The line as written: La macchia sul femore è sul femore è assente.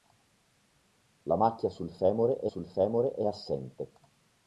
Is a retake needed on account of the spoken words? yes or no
no